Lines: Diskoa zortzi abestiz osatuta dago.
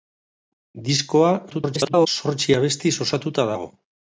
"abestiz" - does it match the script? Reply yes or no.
yes